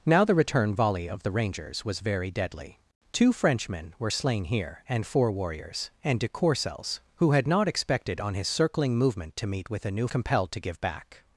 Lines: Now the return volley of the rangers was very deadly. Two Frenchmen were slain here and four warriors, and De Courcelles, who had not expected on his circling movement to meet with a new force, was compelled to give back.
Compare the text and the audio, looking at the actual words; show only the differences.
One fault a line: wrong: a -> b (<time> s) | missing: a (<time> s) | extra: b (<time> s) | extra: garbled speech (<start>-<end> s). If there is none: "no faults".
missing: force was (10.1 s)